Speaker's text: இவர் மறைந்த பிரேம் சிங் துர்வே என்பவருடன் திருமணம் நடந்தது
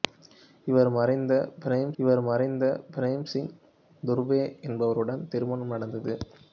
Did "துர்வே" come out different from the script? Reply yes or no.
no